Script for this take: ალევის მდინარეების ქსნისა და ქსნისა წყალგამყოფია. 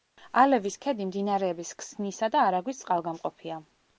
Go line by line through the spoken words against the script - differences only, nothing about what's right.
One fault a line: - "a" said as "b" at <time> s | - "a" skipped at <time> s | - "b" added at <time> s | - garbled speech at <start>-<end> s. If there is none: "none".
- "ქედი" added at 0.8 s
- "ქსნისა" said as "არაგვის" at 2.5 s